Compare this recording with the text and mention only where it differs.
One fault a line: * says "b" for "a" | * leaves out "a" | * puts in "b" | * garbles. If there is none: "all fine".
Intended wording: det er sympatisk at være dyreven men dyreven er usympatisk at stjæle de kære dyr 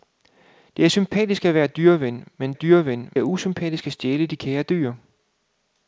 all fine